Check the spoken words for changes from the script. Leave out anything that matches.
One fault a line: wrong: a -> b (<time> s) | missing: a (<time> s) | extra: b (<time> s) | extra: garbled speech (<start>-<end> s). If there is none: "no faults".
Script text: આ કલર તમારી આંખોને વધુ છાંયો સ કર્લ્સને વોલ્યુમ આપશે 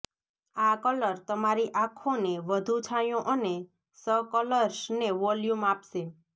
extra: અને (3.3 s)